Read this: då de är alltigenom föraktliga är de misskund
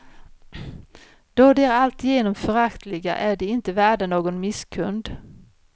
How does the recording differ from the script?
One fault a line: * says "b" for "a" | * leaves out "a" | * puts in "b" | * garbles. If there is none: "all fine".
* puts in "inte värda någon"